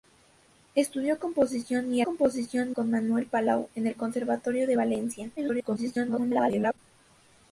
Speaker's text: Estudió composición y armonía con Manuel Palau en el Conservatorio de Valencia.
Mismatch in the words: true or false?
true